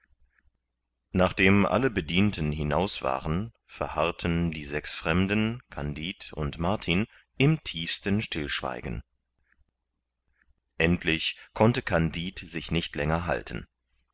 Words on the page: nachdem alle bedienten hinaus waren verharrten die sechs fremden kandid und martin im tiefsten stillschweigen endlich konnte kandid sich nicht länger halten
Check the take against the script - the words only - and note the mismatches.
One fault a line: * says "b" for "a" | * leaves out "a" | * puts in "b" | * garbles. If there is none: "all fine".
all fine